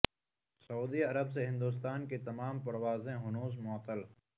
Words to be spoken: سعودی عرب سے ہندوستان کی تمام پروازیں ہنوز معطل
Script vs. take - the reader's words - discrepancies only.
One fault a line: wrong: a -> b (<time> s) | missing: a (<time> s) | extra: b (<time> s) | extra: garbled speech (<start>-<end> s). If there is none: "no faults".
no faults